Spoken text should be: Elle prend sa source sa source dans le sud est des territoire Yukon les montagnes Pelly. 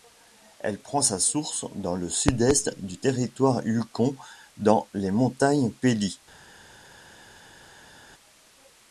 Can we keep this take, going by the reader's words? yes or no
no